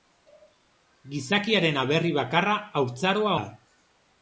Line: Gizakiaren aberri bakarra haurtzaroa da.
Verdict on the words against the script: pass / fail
pass